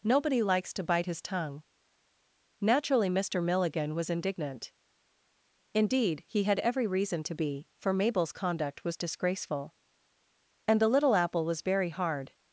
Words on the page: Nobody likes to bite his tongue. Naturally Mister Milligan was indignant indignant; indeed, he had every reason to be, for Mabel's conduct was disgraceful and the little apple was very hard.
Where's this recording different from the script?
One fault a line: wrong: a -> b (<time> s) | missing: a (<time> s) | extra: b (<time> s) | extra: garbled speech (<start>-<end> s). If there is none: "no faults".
missing: indignant (4.7 s)